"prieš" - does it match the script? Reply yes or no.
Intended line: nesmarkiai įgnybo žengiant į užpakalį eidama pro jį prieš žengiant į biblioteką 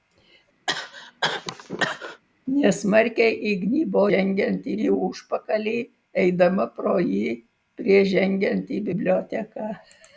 yes